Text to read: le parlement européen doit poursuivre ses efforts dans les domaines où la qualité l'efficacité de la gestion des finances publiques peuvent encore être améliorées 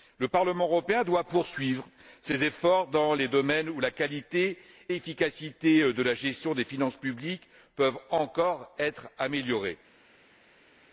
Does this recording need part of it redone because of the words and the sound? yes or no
no